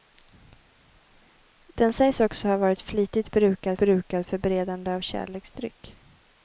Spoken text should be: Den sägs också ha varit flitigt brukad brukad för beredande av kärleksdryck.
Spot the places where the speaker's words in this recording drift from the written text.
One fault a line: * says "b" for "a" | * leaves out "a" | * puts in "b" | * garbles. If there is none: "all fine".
all fine